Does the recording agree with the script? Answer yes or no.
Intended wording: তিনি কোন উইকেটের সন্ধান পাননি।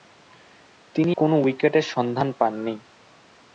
yes